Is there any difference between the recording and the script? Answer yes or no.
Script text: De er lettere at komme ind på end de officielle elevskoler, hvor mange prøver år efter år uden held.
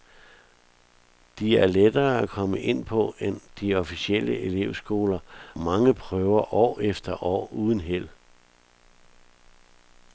yes